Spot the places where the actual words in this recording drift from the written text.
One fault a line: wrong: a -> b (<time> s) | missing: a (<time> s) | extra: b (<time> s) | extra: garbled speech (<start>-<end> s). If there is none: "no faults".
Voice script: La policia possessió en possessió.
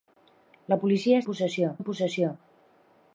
no faults